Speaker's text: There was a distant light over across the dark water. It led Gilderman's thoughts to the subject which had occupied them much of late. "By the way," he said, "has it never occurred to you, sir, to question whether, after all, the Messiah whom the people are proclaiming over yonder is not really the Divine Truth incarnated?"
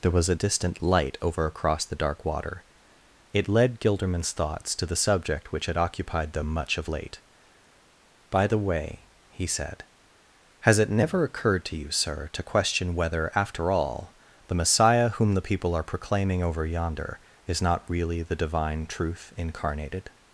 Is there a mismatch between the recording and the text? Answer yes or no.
no